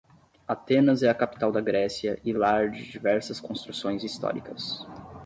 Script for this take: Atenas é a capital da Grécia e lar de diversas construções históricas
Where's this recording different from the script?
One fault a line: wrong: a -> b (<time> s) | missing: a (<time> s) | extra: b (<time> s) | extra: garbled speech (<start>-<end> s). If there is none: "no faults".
no faults